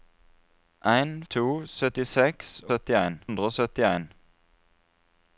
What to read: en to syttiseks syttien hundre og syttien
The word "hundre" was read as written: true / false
true